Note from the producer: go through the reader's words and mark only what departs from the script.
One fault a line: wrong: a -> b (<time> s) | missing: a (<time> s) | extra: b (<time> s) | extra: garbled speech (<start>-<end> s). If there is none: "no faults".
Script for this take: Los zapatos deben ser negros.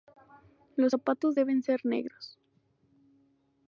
no faults